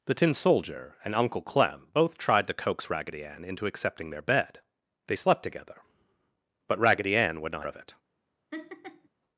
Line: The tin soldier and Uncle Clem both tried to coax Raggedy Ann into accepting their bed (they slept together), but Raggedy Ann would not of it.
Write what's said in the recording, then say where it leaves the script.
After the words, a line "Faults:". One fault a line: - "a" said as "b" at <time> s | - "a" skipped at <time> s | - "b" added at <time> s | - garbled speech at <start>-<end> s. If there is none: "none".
The tin soldier and Uncle Clem both tried to coax Raggedy Ann into accepting their bed (they slept together), but Raggedy Ann would not of it.
Faults:
none